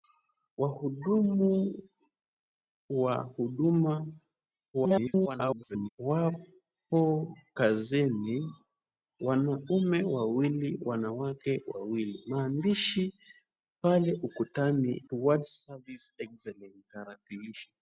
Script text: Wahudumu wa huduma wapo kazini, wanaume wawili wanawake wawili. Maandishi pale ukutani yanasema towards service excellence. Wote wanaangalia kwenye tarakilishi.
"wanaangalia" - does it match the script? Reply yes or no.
no